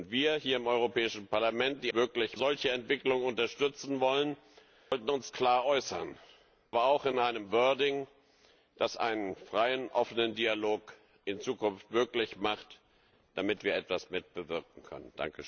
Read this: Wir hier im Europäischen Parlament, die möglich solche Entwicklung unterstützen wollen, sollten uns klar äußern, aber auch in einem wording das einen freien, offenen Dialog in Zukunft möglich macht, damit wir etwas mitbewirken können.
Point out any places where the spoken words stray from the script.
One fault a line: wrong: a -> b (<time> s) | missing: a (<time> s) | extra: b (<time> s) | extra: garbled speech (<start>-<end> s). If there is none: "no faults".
no faults